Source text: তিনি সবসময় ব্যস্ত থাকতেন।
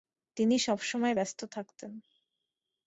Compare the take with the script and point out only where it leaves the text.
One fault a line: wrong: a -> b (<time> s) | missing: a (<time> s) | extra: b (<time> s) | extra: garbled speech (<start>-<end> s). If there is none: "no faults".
no faults